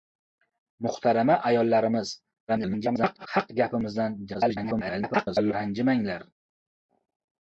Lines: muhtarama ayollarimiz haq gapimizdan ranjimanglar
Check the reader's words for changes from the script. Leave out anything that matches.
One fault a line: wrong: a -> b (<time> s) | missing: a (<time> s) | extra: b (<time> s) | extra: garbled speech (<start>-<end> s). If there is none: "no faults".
extra: garbled speech (2.5-3.3 s)
extra: garbled speech (4.3-5.5 s)